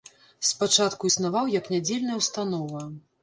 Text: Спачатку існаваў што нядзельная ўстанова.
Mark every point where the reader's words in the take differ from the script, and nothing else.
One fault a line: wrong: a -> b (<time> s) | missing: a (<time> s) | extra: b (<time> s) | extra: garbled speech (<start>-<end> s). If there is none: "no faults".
wrong: што -> як (1.6 s)